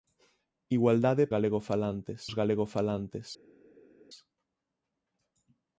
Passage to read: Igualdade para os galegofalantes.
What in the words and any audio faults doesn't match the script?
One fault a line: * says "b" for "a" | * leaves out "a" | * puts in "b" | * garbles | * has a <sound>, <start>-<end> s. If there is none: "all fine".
* says "galegofalantes" for "para"